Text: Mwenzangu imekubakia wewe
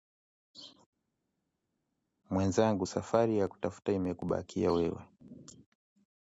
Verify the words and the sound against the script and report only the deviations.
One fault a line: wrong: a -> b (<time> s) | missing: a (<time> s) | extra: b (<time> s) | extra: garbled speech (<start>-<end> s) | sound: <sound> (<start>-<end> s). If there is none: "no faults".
extra: safari ya kutafuta (2.8 s)